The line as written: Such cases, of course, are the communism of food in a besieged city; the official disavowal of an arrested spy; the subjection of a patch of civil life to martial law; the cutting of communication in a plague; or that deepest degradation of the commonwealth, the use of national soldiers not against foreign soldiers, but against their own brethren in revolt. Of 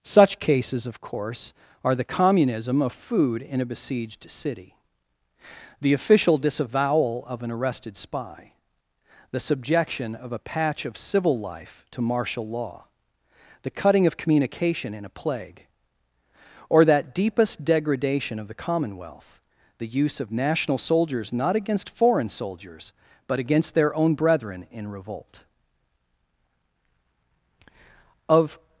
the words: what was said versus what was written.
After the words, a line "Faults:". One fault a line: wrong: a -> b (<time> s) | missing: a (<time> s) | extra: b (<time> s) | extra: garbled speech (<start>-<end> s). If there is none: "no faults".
Such cases, of course, are the communism of food in a besieged city; the official disavowal of an arrested spy; the subjection of a patch of civil life to martial law; the cutting of communication in a plague; or that deepest degradation of the commonwealth, the use of national soldiers not against foreign soldiers, but against their own brethren in revolt. Of
Faults:
no faults